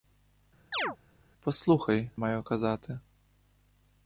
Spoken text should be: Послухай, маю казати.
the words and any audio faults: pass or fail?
fail